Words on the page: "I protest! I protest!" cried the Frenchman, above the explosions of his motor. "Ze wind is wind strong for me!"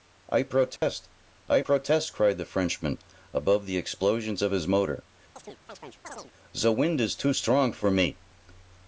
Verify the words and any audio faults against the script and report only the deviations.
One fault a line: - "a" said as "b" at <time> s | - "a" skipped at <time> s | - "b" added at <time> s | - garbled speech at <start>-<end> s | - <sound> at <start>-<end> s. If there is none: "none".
- dropout at 0.8-0.8 s
- chirp at 5.4-6.3 s
- "wind" said as "too" at 7.1 s